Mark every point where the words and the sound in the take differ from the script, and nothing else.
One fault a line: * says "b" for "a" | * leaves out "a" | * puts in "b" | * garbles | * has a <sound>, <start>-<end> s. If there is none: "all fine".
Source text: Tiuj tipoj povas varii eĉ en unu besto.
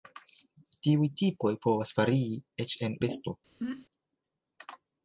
* leaves out "unu"
* has a throat clearing, 3.6-3.9 s